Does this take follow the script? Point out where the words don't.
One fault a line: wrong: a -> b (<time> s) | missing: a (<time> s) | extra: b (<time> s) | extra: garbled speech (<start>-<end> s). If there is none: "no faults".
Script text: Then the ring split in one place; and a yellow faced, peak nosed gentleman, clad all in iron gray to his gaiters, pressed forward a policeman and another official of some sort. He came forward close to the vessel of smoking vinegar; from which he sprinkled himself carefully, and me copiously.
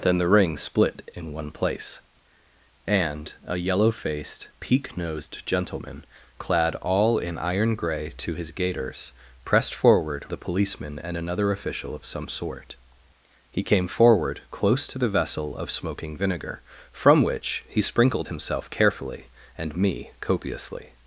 no faults